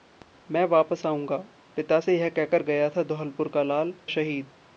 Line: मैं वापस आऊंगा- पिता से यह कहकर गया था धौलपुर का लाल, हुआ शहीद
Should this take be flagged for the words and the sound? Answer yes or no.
yes